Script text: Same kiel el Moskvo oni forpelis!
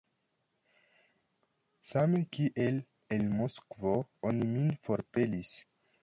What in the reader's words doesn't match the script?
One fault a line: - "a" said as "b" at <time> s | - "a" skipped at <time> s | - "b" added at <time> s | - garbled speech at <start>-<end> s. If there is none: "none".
- "min" added at 4.5 s